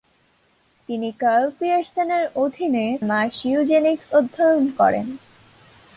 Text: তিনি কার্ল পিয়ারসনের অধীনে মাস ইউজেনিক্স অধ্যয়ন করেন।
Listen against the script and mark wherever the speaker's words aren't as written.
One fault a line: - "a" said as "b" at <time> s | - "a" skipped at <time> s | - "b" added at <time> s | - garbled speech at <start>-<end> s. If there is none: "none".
none